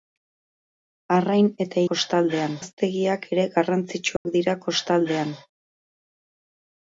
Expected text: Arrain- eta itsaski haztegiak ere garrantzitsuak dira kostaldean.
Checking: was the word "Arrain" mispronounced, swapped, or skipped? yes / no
no